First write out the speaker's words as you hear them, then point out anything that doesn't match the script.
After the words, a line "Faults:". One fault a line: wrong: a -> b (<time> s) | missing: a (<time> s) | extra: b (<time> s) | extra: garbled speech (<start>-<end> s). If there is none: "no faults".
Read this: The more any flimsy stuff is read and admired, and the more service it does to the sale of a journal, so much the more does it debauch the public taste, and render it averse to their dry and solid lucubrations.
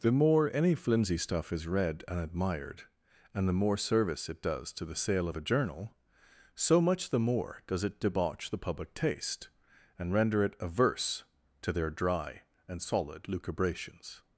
The more any flimsy stuff is read and admired, and the more service it does to the sale of a journal, so much the more does it debauch the public taste, and render it averse to their dry and solid lucubrations.
Faults:
no faults